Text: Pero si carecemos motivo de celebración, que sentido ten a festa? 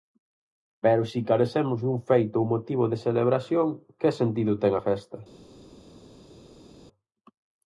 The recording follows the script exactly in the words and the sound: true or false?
false